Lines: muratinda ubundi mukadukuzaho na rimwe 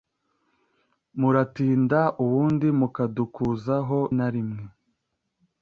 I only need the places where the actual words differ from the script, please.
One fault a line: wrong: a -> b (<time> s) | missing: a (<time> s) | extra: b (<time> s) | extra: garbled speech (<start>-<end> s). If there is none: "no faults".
no faults